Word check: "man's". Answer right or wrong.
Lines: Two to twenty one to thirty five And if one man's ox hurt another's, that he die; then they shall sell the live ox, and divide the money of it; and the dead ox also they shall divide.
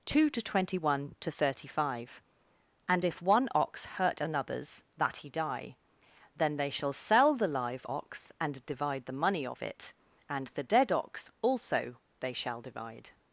wrong